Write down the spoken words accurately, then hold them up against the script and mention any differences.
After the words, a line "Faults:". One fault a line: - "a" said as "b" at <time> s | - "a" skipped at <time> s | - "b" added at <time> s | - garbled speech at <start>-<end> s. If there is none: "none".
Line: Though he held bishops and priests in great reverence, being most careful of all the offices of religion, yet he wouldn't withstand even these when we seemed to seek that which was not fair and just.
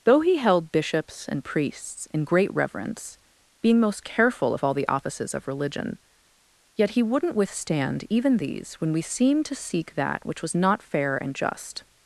Though he held bishops and priests in great reverence, being most careful of all the offices of religion, yet he wouldn't withstand even these when we seemed to seek that which was not fair and just.
Faults:
none